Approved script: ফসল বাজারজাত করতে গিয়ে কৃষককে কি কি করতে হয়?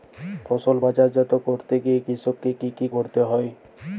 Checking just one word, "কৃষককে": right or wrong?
right